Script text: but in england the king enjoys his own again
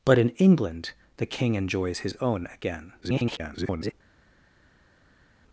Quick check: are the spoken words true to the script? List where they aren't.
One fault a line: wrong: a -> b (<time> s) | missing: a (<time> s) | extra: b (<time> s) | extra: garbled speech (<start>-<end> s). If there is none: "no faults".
extra: garbled speech (3.0-3.9 s)